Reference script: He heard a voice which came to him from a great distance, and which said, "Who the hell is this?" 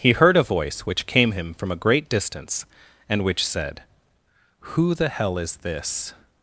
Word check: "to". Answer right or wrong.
wrong